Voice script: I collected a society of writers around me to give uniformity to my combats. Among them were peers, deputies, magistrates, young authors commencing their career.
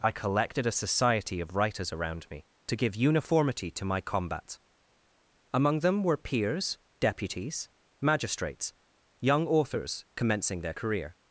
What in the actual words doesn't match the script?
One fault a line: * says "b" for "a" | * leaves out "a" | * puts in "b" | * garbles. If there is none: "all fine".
* says "combat" for "combats"